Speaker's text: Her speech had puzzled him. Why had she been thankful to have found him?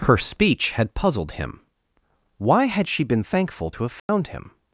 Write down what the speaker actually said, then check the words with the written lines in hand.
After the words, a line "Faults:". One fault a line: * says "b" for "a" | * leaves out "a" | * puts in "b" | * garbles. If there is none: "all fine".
Her speech had puzzled him. Why had she been thankful to have found him?
Faults:
all fine